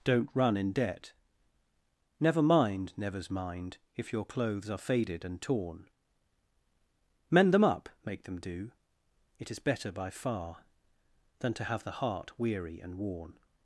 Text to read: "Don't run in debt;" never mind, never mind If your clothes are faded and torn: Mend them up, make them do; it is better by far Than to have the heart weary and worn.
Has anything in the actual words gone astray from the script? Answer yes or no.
yes